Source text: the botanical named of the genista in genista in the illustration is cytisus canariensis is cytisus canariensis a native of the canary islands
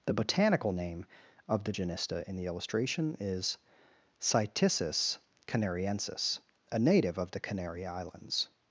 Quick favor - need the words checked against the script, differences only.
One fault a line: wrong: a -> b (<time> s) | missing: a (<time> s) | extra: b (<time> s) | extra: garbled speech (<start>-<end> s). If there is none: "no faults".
wrong: named -> name (0.7 s)
missing: genista in (2.4 s)
missing: is cytisus canariensis (6.4 s)